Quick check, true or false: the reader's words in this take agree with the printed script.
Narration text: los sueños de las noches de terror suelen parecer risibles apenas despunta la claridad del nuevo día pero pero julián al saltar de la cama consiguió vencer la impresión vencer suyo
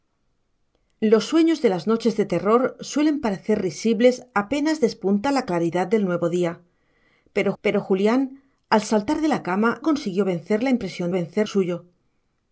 true